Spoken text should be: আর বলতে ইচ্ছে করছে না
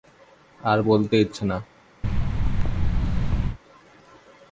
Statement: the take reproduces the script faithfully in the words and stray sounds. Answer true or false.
false